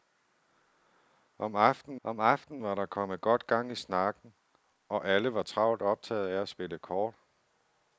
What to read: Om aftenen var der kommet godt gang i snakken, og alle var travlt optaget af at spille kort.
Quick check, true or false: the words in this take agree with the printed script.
false